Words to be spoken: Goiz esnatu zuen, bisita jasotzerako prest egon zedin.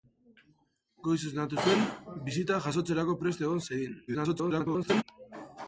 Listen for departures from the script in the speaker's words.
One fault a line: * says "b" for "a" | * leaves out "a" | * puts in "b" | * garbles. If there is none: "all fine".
* garbles